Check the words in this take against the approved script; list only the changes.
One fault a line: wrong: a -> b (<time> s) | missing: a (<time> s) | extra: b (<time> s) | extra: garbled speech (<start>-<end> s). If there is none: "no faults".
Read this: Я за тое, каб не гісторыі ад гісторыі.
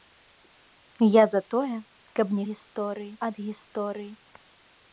no faults